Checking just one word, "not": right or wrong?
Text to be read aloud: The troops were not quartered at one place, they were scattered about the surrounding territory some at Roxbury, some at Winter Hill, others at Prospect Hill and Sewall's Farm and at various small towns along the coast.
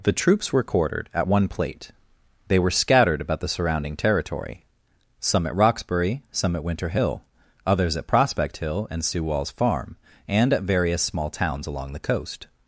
wrong